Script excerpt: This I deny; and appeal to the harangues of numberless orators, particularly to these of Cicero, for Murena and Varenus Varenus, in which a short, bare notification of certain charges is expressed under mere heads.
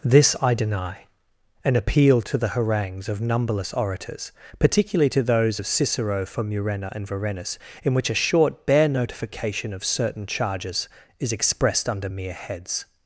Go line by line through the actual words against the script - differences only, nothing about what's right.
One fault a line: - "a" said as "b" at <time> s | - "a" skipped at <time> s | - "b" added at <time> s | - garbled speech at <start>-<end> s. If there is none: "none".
- "these" said as "those" at 5.2 s
- "Varenus" skipped at 7.6 s